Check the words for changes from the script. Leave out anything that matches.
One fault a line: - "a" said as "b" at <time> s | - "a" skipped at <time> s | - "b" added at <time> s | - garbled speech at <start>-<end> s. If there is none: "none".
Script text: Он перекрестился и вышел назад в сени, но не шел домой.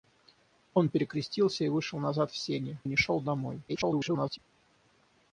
- "но" skipped at 2.8 s
- garbled speech at 3.7-4.4 s